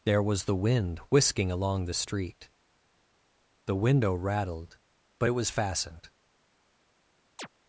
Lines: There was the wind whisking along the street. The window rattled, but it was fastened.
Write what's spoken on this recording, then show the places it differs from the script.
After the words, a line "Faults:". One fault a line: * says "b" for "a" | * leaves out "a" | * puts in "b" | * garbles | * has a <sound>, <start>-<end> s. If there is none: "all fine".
There was the wind whisking along the street. The window rattled, but it was fastened.
Faults:
* has a chirp, 7.4-7.5 s